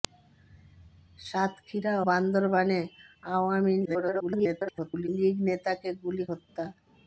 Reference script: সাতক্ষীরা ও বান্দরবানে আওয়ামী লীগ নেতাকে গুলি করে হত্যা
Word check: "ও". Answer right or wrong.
wrong